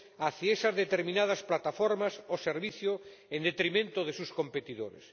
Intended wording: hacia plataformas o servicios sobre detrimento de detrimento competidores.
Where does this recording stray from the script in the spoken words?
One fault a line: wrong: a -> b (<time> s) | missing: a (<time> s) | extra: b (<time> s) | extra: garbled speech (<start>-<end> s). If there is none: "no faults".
extra: esas determinadas (0.5 s)
wrong: sobre -> en (3.3 s)
wrong: detrimento -> sus (4.1 s)